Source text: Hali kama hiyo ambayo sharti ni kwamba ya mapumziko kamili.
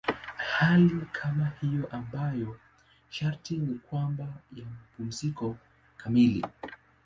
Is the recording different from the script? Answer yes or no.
no